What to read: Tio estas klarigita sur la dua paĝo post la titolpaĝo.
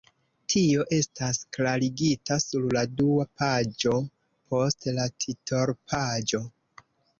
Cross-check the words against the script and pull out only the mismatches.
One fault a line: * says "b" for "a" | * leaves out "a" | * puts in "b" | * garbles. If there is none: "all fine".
all fine